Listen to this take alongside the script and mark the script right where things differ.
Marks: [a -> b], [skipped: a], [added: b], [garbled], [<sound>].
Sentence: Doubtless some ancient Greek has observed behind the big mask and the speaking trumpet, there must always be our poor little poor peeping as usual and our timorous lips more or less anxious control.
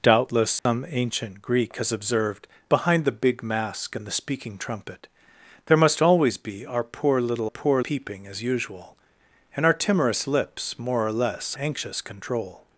Doubtless some [dropout] ancient Greek has observed behind the big mask and the speaking trumpet, there must always be our poor little poor peeping as usual and our timorous lips more or less anxious control.